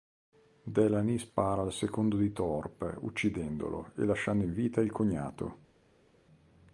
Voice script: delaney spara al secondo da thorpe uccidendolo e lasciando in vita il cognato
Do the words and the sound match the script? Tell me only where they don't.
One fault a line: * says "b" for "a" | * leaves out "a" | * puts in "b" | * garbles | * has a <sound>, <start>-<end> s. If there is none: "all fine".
* says "di" for "da"